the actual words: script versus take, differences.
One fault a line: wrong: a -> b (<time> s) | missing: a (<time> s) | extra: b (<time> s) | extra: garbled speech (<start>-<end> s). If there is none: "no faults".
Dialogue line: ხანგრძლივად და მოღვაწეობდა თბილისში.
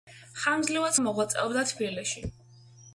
no faults